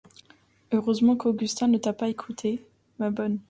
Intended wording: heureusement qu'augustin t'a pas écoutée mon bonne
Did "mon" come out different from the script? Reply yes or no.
yes